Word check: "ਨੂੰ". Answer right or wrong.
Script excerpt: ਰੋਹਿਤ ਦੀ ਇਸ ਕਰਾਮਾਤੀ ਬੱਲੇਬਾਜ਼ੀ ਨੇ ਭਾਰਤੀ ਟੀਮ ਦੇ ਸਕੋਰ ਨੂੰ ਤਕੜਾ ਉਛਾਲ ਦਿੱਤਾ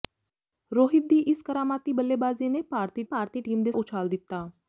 wrong